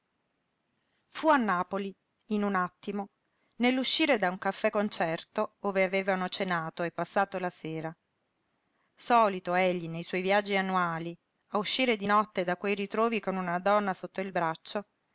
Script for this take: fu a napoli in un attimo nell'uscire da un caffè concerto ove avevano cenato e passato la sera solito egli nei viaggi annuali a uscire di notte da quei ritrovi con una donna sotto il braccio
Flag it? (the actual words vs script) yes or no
yes